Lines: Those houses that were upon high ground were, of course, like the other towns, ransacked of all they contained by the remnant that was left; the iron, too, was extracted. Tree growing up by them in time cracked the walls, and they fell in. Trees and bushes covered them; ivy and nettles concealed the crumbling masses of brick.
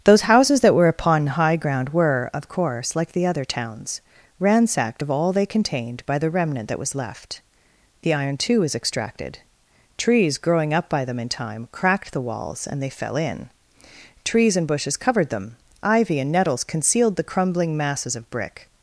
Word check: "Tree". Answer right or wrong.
wrong